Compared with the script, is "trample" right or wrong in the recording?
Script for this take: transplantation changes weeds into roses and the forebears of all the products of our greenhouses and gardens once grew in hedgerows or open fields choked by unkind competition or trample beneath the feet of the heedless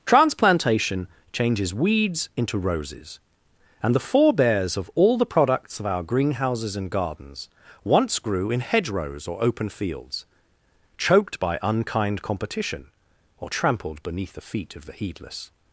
wrong